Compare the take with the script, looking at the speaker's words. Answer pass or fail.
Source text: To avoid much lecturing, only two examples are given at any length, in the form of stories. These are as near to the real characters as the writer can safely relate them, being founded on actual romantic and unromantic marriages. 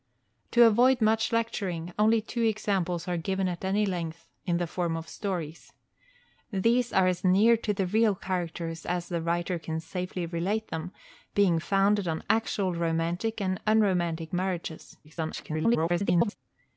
fail